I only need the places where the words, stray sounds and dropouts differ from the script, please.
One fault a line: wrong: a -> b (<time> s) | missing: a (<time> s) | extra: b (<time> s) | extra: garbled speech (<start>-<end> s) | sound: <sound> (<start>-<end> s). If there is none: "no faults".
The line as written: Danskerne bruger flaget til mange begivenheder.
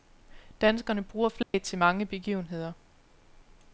sound: dropout (1.4-1.5 s)